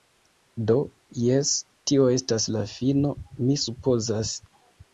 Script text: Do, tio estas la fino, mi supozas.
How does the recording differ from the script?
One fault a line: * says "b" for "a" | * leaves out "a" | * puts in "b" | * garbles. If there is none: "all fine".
* puts in "jes"